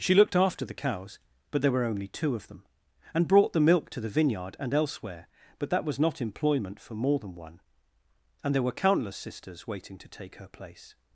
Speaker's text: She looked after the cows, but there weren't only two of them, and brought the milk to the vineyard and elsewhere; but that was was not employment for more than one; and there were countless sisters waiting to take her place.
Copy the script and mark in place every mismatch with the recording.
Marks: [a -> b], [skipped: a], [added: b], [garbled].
She looked after the cows, but there [weren't -> were] only two of them, and brought the milk to the vineyard and elsewhere; but that was [skipped: was] not employment for more than one; and there were countless sisters waiting to take her place.